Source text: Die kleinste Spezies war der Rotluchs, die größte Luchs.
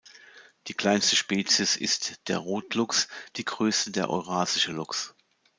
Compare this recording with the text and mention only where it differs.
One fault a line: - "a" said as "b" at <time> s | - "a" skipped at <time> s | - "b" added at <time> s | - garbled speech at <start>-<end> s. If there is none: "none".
- "war" said as "ist" at 1.8 s
- "der Eurasische" added at 3.9 s